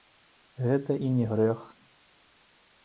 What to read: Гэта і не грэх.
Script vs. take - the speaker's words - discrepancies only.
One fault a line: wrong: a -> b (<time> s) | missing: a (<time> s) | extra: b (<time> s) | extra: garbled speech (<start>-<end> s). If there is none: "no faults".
no faults